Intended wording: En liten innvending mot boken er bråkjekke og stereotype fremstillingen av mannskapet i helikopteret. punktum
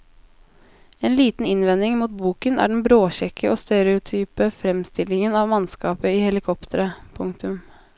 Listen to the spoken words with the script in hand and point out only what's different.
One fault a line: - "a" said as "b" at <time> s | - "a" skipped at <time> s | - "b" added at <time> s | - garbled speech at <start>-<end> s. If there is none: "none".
- "den" added at 2.7 s